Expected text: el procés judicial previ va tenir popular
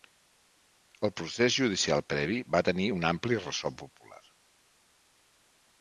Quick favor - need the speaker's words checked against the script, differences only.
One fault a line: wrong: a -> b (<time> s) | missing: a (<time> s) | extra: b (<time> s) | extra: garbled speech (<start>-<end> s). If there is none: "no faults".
extra: un ampli ressò (3.0 s)